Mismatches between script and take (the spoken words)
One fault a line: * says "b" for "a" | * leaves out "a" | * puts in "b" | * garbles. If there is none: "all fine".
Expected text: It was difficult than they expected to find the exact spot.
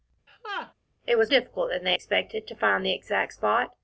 all fine